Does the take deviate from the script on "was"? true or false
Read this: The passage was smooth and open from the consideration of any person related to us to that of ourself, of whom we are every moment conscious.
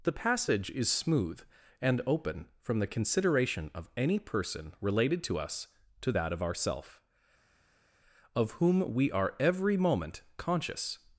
true